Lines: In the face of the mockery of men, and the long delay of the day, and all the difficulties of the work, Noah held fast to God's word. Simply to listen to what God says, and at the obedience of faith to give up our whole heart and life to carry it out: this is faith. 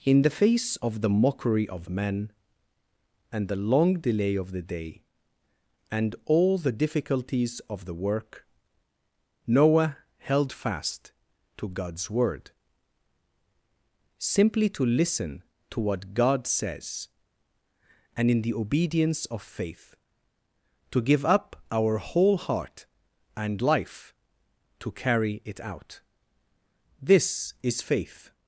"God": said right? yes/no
yes